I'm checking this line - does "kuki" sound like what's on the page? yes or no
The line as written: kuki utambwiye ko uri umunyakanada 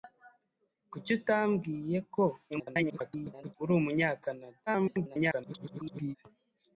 yes